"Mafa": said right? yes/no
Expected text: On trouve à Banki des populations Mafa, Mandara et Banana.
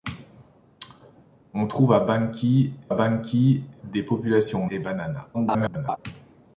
no